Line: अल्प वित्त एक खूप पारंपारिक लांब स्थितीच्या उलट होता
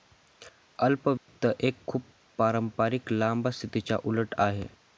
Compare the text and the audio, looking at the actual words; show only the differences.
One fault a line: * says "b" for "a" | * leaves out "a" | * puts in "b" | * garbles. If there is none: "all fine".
* says "आहे" for "होता"